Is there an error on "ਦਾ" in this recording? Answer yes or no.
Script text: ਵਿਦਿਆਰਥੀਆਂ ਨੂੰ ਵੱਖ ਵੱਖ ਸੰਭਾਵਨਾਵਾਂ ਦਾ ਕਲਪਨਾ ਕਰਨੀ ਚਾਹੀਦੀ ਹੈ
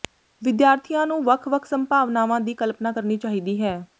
yes